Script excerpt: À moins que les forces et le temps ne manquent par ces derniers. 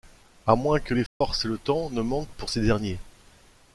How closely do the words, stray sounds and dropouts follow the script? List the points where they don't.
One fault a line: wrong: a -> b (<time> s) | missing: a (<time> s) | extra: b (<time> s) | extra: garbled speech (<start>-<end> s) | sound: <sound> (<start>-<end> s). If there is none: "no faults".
sound: dropout (1.1-1.2 s)
wrong: par -> pour (2.4 s)